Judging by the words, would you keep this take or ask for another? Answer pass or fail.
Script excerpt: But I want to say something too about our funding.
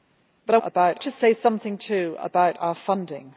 fail